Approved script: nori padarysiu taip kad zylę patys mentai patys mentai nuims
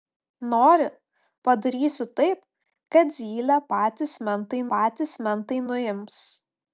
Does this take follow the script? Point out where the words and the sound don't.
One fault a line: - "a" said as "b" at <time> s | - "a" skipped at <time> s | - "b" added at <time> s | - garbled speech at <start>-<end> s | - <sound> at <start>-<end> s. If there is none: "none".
none